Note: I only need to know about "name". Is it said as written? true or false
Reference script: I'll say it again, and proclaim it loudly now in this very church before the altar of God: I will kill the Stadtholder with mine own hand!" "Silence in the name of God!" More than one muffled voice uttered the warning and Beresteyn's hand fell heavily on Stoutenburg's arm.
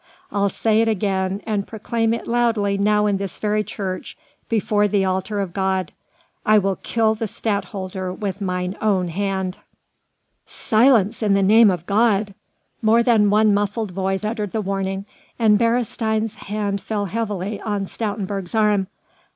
true